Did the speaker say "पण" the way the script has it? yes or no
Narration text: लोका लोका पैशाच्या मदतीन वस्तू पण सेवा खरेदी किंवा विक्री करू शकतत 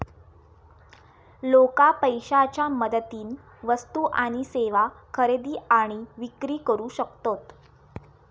no